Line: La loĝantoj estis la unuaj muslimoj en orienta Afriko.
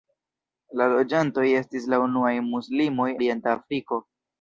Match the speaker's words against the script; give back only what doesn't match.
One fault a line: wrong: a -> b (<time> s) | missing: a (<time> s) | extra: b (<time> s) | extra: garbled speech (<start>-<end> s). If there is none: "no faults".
missing: en (3.1 s)